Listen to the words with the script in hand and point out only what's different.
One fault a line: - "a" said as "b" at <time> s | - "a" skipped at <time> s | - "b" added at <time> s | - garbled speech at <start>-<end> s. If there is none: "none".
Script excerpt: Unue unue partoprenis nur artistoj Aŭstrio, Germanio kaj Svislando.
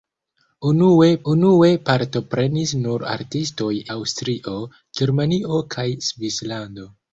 none